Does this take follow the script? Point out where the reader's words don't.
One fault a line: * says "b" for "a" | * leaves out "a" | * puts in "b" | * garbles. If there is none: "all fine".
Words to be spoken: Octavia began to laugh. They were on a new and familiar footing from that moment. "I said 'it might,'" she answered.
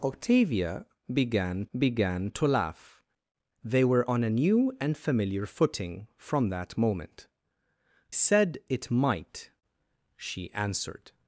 * puts in "began"
* leaves out "I"